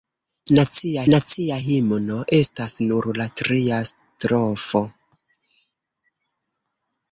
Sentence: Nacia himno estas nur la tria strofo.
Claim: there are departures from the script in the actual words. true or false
true